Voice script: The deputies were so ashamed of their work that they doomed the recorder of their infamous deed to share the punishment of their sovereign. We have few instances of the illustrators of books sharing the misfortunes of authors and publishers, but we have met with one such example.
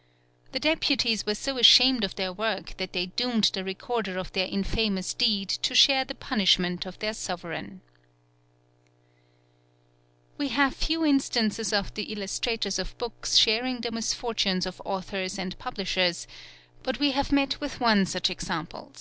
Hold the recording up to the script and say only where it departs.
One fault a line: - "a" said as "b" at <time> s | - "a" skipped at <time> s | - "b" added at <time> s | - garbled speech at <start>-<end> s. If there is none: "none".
none